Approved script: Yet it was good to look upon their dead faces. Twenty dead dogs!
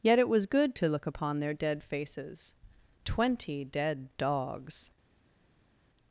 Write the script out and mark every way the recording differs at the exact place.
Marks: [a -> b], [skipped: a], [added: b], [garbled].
Yet it was good to look upon their dead faces. Twenty dead dogs!